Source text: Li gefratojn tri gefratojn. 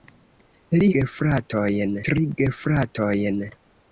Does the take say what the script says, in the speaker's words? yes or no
yes